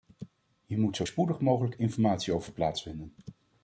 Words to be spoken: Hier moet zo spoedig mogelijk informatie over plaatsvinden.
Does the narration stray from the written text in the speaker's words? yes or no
no